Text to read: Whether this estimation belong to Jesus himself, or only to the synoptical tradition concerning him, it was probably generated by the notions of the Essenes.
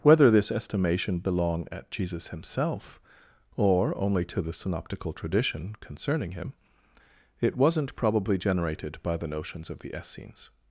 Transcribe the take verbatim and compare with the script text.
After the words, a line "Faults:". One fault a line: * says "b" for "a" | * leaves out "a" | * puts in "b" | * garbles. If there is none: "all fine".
Whether this estimation belong at Jesus himself, or only to the synoptical tradition concerning him, it wasn't probably generated by the notions of the Essenes.
Faults:
* says "at" for "to"
* says "wasn't" for "was"